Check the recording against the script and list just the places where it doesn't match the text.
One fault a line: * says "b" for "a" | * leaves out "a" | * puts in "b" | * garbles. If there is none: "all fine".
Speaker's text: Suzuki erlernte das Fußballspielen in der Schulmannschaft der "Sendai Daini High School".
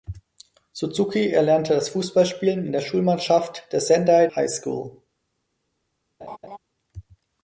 * leaves out "Daini"